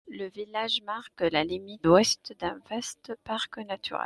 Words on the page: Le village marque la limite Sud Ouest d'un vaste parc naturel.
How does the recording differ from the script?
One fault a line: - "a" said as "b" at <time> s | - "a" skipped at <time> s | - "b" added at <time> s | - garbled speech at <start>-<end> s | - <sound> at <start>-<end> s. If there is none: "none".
- "Sud" skipped at 1.9 s